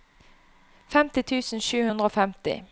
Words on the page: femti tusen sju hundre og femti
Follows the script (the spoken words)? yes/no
yes